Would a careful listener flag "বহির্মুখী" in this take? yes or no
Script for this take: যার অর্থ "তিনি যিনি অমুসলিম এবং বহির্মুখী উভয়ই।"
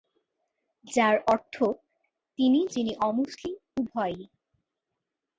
yes